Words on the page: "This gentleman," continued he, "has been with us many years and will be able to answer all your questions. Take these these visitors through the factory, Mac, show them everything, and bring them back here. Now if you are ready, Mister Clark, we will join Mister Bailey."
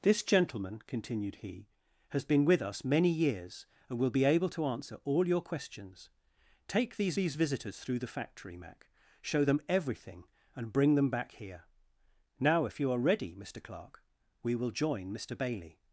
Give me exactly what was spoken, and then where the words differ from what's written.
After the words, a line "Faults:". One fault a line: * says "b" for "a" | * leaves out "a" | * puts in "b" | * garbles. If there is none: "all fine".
"This gentleman," continued he, "has been with us many years and will be able to answer all your questions. Take these these visitors through the factory, Mac, show them everything, and bring them back here. Now if you are ready, Mister Clark, we will join Mister Bailey."
Faults:
all fine